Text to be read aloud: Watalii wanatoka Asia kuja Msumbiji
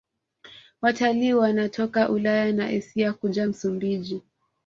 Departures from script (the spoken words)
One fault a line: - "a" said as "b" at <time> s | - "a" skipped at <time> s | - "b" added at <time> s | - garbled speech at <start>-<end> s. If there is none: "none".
- "Ulaya na" added at 2.1 s